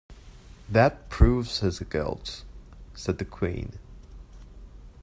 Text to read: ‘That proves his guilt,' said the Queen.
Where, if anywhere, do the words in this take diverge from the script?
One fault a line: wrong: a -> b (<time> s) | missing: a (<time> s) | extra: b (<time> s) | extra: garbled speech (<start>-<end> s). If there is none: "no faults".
no faults